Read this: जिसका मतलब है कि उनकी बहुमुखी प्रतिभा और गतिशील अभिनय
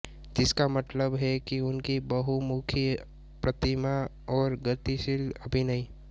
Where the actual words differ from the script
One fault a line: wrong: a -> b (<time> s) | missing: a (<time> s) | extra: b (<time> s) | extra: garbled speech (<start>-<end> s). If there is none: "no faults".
no faults